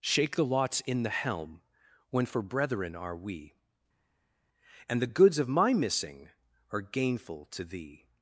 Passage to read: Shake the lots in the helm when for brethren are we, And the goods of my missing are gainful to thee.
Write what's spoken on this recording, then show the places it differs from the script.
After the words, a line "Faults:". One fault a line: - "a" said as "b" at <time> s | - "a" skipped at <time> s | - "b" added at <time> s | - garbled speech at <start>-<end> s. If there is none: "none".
Shake the lots in the helm when for brethren are we, And the goods of my missing are gainful to thee.
Faults:
none